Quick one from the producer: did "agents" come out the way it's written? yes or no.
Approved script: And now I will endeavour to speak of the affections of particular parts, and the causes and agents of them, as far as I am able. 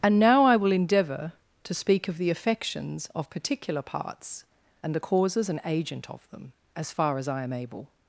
no